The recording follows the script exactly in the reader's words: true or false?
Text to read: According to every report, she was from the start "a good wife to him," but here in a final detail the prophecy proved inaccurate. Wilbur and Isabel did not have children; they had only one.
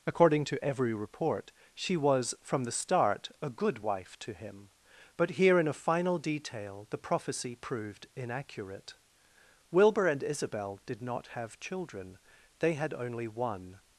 true